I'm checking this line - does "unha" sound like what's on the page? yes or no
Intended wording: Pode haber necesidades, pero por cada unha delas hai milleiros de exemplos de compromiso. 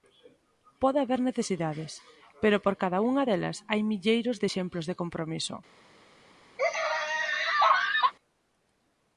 yes